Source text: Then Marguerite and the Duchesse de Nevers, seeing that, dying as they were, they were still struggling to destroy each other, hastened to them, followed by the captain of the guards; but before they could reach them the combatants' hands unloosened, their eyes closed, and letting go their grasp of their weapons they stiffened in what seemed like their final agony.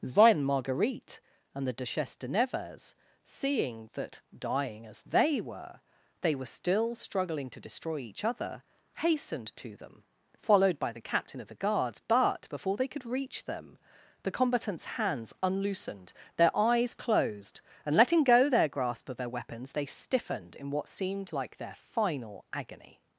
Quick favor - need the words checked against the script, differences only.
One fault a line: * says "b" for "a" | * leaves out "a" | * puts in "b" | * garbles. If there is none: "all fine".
all fine